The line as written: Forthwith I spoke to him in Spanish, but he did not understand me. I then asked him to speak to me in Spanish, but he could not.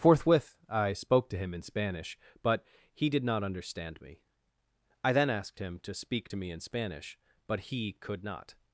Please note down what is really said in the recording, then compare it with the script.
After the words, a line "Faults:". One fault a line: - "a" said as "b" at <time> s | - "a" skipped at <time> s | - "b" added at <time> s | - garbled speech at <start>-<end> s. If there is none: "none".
Forthwith I spoke to him in Spanish, but he did not understand me. I then asked him to speak to me in Spanish, but he could not.
Faults:
none